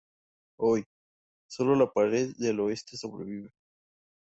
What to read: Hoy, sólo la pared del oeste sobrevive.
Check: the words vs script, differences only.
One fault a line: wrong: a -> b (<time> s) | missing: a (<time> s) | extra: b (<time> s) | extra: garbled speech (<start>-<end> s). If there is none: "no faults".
no faults